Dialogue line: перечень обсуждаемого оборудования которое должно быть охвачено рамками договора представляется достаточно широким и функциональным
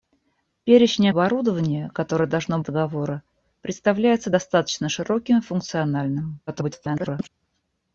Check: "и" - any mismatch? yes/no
no